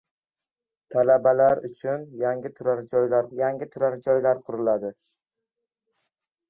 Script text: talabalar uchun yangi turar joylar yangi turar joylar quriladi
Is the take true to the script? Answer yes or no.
yes